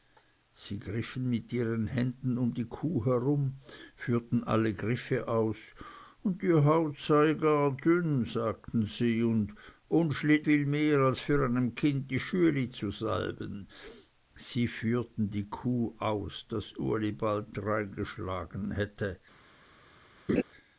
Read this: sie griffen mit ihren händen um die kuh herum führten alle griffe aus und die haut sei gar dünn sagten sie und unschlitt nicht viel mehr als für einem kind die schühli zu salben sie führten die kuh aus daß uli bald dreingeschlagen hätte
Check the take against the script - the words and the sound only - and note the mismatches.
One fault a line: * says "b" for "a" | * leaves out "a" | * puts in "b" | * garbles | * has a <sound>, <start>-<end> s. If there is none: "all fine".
* leaves out "nicht"
* has a laugh, 20.3-20.4 s